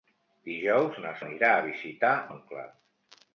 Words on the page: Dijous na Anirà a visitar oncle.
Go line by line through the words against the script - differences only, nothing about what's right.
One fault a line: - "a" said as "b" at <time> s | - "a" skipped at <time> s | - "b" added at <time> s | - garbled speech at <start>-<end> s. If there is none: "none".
none